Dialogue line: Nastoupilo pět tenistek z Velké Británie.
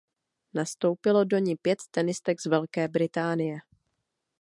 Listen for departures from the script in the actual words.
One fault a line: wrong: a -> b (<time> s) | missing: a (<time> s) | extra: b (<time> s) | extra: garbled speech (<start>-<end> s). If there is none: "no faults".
extra: do ni (1.2 s)